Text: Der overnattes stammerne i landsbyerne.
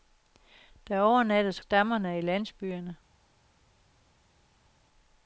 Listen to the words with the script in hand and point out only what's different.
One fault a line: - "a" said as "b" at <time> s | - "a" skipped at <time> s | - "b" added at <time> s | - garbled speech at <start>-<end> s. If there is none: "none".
none